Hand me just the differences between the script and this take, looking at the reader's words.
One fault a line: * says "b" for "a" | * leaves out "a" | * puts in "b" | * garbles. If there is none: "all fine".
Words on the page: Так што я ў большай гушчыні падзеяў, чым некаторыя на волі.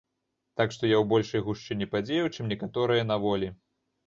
all fine